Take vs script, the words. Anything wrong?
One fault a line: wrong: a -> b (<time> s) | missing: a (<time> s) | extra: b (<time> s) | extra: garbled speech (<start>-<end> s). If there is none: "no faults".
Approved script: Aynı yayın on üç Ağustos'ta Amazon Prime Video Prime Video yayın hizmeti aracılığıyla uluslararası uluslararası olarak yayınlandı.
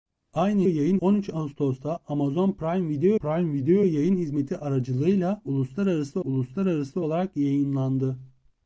no faults